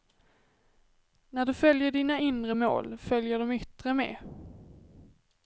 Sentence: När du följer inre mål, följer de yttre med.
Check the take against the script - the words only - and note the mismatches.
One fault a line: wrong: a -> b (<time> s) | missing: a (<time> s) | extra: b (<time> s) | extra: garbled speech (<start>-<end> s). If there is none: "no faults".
extra: dina (1.9 s)